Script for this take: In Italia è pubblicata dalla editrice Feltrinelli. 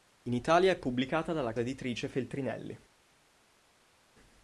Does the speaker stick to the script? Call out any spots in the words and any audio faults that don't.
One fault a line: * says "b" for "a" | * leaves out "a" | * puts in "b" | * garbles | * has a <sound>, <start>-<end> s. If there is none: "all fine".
all fine